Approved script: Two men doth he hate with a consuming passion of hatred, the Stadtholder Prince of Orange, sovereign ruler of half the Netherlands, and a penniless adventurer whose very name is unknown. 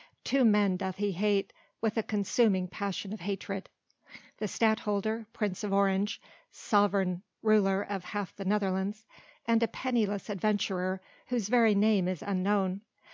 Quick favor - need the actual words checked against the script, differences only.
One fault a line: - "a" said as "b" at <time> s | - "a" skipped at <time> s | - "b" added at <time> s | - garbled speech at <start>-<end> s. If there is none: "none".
none